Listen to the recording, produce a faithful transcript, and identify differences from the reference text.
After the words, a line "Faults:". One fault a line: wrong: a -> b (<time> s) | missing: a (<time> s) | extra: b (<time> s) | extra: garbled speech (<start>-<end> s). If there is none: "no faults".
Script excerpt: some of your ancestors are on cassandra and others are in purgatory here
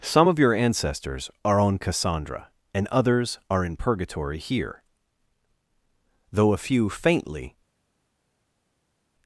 some of your ancestors are on cassandra and others are in purgatory here though a few faintly
Faults:
extra: though a few faintly (6.3 s)